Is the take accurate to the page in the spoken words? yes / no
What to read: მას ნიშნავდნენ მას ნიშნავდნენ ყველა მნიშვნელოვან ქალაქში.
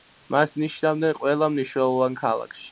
no